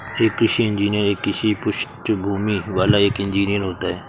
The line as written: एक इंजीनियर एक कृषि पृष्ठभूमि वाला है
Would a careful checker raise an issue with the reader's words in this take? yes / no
yes